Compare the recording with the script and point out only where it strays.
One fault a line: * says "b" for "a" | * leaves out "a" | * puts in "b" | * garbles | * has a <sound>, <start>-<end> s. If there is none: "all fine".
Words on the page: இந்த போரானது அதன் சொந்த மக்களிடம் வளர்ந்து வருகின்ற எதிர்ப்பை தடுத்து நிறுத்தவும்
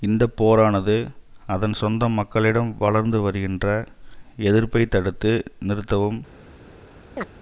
* has a chirp, 7.2-7.3 s